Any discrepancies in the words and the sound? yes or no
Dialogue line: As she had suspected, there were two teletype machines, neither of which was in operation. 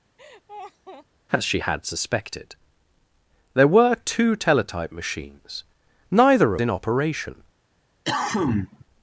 yes